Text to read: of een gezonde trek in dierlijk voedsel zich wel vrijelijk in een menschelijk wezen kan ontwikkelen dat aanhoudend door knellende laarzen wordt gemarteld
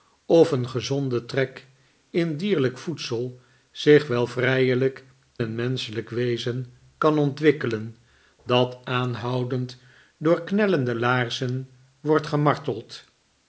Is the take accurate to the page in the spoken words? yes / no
no